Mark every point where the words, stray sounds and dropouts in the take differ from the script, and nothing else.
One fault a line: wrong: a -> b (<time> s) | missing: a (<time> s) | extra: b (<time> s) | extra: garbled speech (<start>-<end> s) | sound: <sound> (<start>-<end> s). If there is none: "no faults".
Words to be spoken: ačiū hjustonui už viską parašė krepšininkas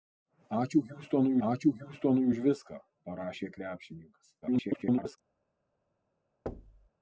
extra: ačiū hjustonui (1.5 s)
extra: garbled speech (4.4-5.2 s)
sound: thud (6.5-6.9 s)